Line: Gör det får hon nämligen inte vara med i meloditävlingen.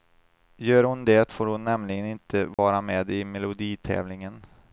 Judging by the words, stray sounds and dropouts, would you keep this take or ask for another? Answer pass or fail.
fail